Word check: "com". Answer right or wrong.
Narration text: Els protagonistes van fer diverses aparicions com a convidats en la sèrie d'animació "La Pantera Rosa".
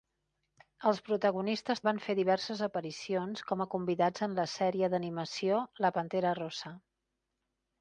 right